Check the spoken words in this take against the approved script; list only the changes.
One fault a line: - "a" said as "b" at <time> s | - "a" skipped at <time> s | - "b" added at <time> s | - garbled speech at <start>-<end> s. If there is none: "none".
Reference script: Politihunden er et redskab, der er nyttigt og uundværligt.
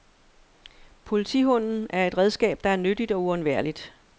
none